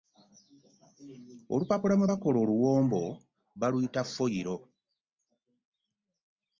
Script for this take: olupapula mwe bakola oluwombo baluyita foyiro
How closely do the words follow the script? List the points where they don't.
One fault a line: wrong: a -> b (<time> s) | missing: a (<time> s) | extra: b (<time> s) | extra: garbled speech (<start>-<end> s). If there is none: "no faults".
no faults